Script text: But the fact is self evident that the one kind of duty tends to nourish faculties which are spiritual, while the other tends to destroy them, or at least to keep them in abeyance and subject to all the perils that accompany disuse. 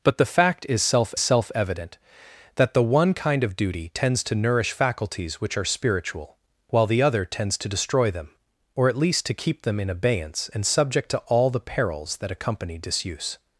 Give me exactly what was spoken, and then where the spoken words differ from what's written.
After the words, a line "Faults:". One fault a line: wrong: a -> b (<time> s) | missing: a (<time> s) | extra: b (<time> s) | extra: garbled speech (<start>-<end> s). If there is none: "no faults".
But the fact is self self evident that the one kind of duty tends to nourish faculties which are spiritual, while the other tends to destroy them, or at least to keep them in abeyance and subject to all the perils that accompany disuse.
Faults:
extra: self (1.2 s)